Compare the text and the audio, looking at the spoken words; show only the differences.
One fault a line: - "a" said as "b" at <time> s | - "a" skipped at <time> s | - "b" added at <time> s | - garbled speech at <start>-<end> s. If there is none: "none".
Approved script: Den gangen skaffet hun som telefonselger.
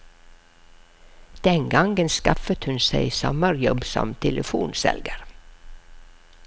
- "seg sommerjobb" added at 2.8 s